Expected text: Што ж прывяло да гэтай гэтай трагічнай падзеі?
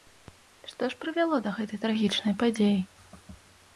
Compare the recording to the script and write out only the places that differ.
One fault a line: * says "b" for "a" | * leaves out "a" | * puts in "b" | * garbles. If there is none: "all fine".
* leaves out "гэтай"